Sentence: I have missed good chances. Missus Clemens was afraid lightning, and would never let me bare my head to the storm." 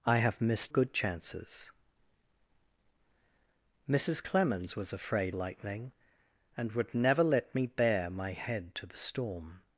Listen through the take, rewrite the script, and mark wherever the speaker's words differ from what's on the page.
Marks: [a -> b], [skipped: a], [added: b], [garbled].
I have missed good chances. Missus Clemens was afraid lightning, and would never let me bare my head to the storm."